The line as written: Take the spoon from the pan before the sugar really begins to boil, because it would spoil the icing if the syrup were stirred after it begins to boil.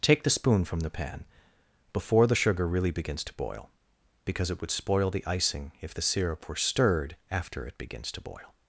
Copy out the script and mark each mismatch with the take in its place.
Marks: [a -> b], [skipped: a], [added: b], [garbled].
Take the spoon from the pan before the sugar really begins to boil, because it would spoil the icing if the syrup were stirred after it begins to boil.